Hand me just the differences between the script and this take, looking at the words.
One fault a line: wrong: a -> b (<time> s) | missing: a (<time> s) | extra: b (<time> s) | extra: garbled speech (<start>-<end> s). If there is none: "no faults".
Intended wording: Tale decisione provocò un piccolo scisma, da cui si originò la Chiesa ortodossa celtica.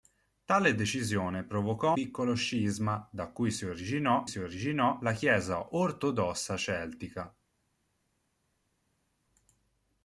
missing: un (1.9 s)
extra: si originò (4.2 s)